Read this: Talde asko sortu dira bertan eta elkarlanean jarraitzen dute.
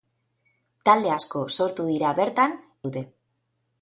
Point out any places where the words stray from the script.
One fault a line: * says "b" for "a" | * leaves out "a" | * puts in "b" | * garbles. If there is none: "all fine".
* leaves out "eta elkarlanean jarraitzen"